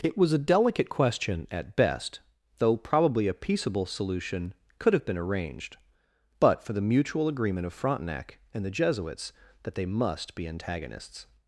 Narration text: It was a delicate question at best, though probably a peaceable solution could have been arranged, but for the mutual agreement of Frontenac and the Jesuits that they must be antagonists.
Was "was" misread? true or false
false